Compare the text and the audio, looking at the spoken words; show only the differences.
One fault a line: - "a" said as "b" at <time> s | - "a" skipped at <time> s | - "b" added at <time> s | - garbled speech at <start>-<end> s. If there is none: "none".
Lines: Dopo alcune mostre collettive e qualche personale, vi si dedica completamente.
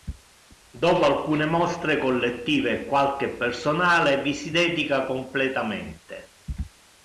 none